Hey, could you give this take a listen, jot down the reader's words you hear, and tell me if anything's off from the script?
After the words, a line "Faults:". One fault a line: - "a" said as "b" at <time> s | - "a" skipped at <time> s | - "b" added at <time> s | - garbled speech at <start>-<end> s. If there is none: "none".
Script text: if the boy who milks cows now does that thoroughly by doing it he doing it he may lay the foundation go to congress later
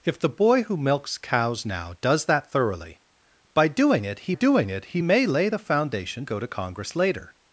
if the boy who milks cows now does that thoroughly by doing it he doing it he may lay the foundation go to congress later
Faults:
none